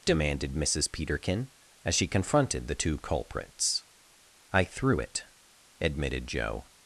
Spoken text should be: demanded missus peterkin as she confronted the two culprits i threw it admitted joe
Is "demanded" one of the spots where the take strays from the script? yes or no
no